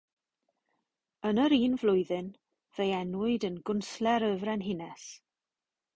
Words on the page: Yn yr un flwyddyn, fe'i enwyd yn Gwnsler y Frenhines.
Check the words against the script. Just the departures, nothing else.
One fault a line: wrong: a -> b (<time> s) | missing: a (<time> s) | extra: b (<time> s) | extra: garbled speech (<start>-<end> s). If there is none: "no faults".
no faults